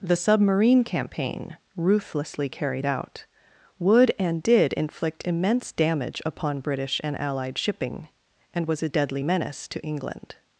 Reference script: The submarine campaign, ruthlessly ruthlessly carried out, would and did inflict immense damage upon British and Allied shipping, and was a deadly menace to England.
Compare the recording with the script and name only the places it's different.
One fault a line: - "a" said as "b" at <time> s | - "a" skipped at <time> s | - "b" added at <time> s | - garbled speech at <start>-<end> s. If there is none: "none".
- "ruthlessly" skipped at 2.5 s